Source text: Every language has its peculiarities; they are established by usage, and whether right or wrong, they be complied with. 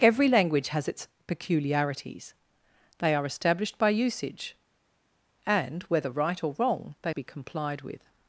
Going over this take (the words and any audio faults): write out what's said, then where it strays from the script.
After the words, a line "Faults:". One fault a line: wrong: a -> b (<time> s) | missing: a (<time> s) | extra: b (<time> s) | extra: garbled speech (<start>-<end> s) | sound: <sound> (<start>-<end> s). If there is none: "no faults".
Every language has its peculiarities; they are established by usage, and whether right or wrong, they be complied with.
Faults:
no faults